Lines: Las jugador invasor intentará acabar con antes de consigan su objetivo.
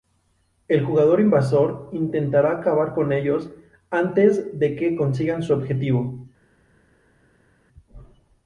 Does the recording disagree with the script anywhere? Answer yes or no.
yes